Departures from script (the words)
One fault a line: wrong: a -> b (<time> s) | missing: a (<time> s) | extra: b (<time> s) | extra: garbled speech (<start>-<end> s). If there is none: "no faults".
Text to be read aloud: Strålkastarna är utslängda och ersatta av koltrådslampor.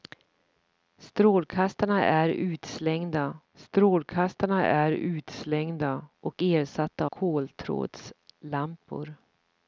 extra: strålkastarna är utslängda (3.5 s)
missing: av (7.1 s)